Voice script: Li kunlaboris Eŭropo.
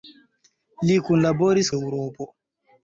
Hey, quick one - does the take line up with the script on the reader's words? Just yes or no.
yes